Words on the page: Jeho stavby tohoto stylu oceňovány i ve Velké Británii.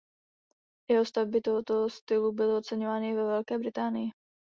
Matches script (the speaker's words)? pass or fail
fail